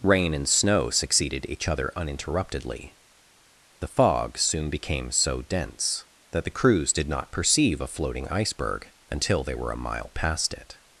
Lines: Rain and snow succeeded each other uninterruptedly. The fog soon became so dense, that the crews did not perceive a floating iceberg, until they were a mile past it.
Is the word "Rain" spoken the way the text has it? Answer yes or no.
yes